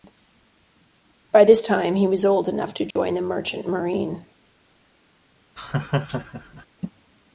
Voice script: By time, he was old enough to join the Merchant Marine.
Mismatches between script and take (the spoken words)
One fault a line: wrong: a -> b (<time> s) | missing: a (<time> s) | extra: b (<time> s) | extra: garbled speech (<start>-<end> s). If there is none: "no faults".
extra: this (1.4 s)